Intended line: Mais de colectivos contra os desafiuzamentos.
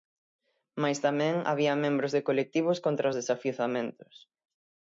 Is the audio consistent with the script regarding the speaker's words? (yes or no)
no